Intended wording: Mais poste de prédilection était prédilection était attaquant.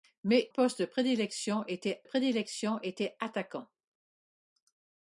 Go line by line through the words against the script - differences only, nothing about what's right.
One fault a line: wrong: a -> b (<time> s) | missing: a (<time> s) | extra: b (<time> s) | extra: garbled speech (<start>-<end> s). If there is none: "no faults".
no faults